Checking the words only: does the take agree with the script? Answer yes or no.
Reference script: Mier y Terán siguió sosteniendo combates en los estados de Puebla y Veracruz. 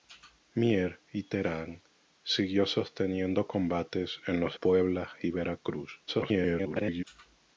no